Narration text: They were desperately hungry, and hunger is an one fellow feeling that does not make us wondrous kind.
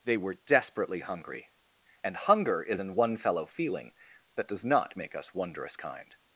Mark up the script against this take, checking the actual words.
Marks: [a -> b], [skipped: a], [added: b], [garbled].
They were desperately hungry, and hunger is an one fellow feeling that does not make us wondrous kind.